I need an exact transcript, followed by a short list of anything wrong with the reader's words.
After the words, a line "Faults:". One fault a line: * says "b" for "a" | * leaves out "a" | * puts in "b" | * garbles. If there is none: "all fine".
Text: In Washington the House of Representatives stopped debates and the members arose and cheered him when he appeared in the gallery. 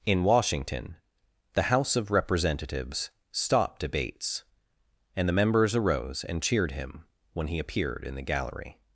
In Washington the House of Representatives stopped debates and the members arose and cheered him when he appeared in the gallery.
Faults:
all fine